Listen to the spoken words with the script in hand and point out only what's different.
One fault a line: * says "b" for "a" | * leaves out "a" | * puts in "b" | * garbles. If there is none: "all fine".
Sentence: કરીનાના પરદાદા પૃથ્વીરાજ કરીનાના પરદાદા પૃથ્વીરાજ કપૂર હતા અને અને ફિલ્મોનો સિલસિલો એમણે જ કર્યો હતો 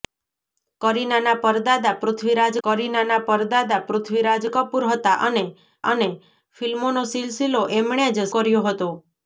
all fine